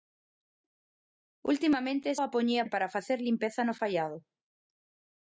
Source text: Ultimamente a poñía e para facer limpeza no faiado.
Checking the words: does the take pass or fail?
pass